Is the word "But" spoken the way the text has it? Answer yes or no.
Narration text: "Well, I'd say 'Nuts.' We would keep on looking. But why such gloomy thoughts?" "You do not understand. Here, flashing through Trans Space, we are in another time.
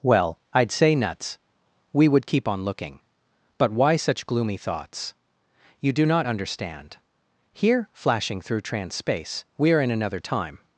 yes